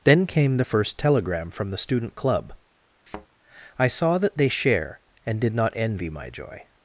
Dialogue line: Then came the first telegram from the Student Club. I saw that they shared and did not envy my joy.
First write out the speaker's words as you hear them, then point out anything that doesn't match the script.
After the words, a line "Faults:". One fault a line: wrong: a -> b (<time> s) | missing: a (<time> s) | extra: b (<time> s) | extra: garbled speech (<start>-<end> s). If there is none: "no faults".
Then came the first telegram from the Student Club. I saw that they share and did not envy my joy.
Faults:
wrong: shared -> share (4.5 s)